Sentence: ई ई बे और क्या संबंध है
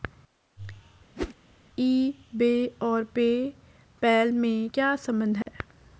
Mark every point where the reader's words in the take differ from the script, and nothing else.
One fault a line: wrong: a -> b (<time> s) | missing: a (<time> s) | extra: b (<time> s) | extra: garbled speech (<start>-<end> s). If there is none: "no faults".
missing: ई (2.1 s)
extra: पे पैल में (3.0 s)